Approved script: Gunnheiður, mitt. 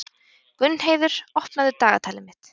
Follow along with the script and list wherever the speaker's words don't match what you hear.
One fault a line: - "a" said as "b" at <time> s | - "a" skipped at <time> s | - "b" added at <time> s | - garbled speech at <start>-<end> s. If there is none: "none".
- "opnaðu dagatalið" added at 1.4 s